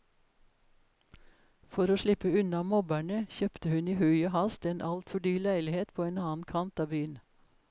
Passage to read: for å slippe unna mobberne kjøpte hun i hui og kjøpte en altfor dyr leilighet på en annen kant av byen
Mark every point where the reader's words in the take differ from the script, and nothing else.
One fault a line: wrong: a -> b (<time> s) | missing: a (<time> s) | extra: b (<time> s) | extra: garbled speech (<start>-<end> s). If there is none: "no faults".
wrong: kjøpte -> hast (4.4 s)